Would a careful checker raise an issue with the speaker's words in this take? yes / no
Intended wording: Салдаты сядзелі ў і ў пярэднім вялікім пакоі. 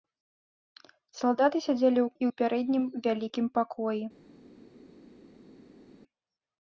no